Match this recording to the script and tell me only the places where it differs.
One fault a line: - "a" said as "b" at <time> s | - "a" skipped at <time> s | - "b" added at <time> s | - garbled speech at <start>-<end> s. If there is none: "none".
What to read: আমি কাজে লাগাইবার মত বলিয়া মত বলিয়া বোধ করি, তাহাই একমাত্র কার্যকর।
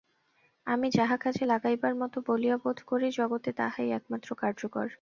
- "যাহা" added at 0.9 s
- "মত বলিয়া" skipped at 2.6 s
- "জগতে" added at 3.1 s